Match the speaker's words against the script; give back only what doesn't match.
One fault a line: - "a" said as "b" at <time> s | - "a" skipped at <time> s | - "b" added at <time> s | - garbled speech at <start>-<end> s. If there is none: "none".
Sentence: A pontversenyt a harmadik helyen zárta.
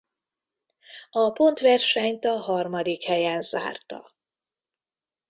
none